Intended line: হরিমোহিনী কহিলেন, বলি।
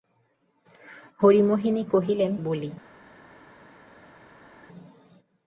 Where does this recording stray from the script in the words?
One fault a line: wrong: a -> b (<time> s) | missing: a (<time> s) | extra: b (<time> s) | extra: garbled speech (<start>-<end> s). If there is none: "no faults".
no faults